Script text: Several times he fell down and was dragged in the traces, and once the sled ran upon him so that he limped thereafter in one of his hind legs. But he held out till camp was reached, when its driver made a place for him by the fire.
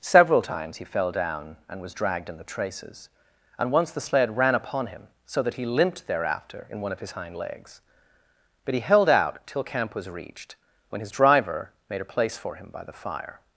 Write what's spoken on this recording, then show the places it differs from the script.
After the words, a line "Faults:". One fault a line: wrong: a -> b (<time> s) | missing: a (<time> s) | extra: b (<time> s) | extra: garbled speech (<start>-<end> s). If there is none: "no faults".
Several times he fell down and was dragged in the traces, and once the sled ran upon him so that he limped thereafter in one of his hind legs. But he held out till camp was reached, when his driver made a place for him by the fire.
Faults:
wrong: its -> his (11.0 s)